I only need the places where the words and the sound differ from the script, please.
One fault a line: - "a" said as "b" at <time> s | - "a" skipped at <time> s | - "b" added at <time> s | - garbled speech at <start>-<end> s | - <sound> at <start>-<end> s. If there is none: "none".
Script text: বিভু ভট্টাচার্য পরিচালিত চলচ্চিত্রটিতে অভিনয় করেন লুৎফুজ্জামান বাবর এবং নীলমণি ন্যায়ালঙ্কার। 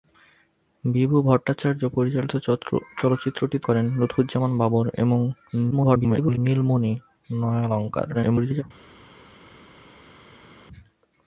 - "অভিনয়" skipped at 3.7 s
- garbled speech at 5.7-6.4 s
- garbled speech at 8.1-8.6 s